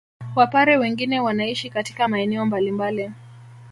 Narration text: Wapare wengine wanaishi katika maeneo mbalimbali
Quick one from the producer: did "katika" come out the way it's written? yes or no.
yes